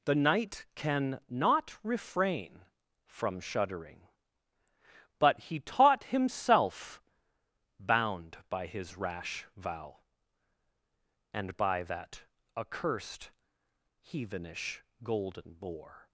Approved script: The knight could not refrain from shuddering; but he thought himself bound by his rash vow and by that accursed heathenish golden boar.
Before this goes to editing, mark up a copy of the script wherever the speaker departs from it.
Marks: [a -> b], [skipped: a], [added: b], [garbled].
The knight [could -> can] not refrain from shuddering; but he [thought -> taught] himself bound by his rash vow and by that accursed heathenish golden boar.